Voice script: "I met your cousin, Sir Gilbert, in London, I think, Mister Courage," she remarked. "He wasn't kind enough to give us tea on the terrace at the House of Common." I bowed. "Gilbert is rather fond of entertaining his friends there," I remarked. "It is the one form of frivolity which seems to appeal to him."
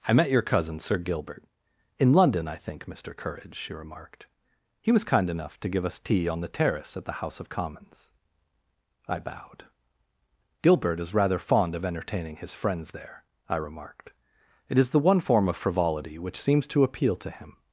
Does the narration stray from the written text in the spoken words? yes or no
yes